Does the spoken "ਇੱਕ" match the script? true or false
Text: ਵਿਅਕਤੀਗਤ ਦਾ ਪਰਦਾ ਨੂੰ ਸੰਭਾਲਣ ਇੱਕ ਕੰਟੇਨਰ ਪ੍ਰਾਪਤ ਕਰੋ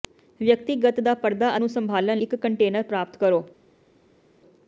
true